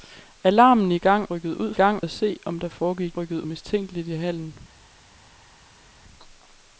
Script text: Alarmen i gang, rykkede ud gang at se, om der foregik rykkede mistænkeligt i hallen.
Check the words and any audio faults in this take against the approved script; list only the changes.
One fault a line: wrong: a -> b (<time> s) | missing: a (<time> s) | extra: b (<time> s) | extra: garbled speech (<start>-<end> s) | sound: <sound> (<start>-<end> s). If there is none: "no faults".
no faults